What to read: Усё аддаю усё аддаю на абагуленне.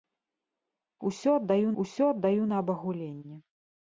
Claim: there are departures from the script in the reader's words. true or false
false